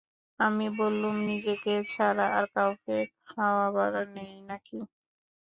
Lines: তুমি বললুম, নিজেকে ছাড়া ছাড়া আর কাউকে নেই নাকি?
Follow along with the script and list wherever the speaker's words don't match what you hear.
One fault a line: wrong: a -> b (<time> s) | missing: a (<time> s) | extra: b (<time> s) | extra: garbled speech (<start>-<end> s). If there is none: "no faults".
wrong: তুমি -> আমি (0.4 s)
missing: ছাড়া (2.3 s)
extra: খাওয়াবার (3.2 s)